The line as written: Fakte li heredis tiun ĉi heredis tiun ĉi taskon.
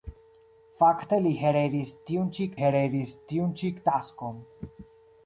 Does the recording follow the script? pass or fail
pass